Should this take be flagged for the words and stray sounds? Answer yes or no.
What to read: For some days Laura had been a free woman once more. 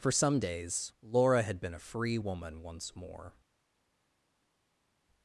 no